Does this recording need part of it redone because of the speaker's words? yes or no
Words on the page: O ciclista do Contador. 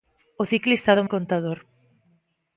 no